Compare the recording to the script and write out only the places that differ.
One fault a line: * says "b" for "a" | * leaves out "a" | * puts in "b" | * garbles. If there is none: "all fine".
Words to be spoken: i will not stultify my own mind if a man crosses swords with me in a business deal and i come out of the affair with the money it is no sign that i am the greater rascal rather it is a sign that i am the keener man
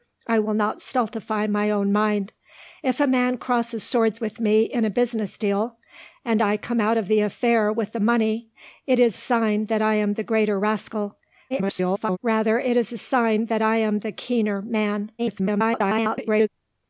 * leaves out "no"
* garbles
* garbles